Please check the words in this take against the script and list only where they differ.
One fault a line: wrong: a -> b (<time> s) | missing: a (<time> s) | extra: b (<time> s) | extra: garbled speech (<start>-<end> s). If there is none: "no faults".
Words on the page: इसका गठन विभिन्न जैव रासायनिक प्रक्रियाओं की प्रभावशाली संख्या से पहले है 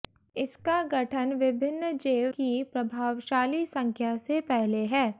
missing: रासायनिक प्रक्रियाओं (2.3 s)